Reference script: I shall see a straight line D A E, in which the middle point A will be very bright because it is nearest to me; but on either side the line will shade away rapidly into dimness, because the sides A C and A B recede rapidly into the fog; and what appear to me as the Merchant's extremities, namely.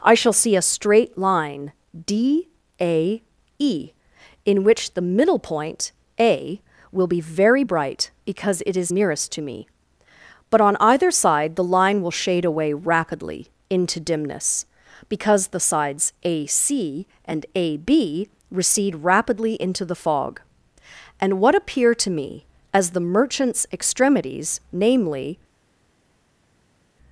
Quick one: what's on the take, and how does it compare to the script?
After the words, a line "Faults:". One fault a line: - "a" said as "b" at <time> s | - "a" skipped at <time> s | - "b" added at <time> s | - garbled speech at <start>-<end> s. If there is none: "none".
I shall see a straight line D A E, in which the middle point A will be very bright because it is nearest to me; but on either side the line will shade away rapidly into dimness, because the sides A C and A B recede rapidly into the fog; and what appear to me as the Merchant's extremities, namely.
Faults:
none